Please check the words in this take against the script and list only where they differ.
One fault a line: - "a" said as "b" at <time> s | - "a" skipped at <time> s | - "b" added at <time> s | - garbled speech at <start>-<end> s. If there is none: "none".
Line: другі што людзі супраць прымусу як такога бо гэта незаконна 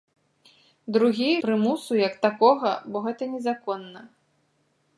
- "што людзі супраць" skipped at 1.3 s